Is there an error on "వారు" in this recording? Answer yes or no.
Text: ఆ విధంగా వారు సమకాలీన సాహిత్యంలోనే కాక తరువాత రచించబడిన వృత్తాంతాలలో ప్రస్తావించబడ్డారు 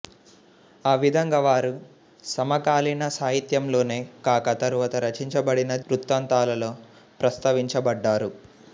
no